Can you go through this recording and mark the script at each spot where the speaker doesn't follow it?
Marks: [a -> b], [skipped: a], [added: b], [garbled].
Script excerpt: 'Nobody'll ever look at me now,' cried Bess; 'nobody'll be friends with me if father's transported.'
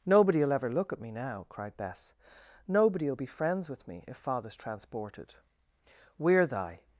'Nobody'll ever look at me now,' cried Bess; 'nobody'll be friends with me if father's transported.' [added: We're thy]